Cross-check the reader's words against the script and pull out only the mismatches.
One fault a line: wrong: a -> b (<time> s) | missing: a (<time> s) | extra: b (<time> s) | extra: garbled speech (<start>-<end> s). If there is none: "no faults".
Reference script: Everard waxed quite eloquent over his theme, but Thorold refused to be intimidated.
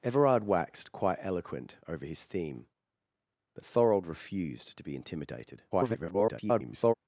extra: garbled speech (5.7-6.9 s)